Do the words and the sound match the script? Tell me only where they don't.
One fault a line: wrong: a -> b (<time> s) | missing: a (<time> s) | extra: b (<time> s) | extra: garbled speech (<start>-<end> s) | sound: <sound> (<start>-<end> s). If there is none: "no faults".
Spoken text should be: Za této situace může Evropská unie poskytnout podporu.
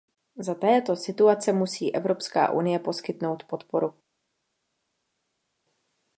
wrong: může -> musí (1.5 s)